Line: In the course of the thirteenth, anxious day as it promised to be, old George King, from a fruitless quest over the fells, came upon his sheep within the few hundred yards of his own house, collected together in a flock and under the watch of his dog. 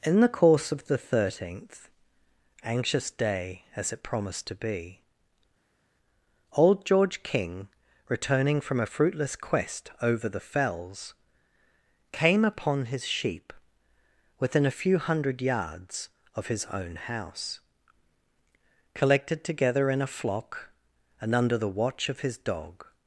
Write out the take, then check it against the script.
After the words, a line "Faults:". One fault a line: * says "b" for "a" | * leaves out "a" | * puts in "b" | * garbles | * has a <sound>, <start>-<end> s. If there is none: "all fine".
In the course of the thirteenth, anxious day as it promised to be, old George King, returning from a fruitless quest over the fells, came upon his sheep within a few hundred yards of his own house, collected together in a flock and under the watch of his dog.
Faults:
* puts in "returning"
* says "a" for "the"